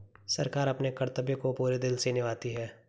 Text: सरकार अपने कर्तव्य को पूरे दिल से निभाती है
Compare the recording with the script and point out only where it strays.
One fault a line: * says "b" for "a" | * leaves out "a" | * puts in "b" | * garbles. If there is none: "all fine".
all fine